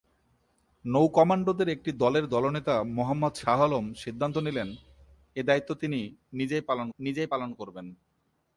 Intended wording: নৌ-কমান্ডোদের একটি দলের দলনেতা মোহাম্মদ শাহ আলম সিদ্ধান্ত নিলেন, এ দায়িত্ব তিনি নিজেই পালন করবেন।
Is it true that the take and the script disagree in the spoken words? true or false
true